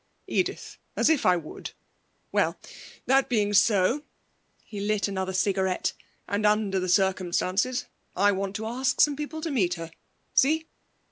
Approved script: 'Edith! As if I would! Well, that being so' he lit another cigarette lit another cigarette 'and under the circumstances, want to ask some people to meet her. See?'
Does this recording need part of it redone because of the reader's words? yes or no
yes